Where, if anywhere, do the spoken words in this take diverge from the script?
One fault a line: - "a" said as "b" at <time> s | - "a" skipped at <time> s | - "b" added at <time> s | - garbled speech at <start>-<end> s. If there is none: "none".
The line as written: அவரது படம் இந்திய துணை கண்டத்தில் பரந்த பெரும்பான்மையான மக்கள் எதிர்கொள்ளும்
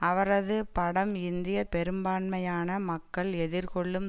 - "துணை கண்டத்தில் பரந்த" skipped at 1.6 s